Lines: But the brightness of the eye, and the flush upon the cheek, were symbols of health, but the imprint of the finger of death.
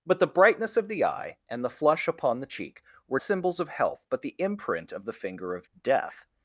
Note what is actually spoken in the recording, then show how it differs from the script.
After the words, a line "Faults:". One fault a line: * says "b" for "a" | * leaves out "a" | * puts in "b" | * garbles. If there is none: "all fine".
But the brightness of the eye, and the flush upon the cheek, were symbols of health, but the imprint of the finger of death.
Faults:
all fine